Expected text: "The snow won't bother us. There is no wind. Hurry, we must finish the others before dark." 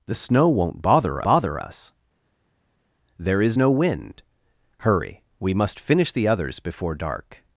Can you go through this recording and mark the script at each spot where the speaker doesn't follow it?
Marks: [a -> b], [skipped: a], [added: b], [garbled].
"The snow won't bother [added: bother] us. There is no wind. Hurry, we must finish the others before dark."